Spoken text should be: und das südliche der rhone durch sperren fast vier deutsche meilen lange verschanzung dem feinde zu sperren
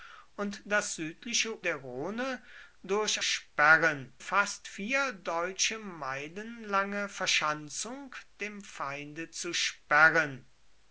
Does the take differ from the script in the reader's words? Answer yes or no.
no